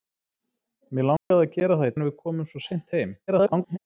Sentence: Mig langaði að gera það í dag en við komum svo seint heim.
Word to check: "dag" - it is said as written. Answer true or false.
false